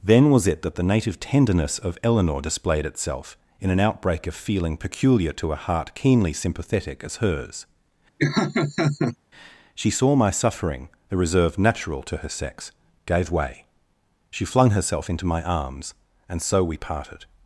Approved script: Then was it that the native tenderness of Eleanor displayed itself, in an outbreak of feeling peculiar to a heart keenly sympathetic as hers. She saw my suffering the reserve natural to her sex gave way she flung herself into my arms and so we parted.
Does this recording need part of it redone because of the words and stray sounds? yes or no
yes